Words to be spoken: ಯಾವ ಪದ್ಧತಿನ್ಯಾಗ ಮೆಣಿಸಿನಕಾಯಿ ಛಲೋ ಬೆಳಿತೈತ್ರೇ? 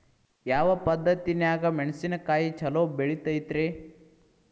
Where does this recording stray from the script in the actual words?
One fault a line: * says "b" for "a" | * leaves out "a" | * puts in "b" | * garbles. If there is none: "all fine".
all fine